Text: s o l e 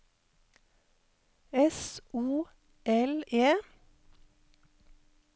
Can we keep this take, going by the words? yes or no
yes